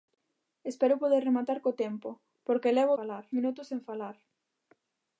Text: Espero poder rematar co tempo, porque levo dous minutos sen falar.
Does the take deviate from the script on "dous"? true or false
true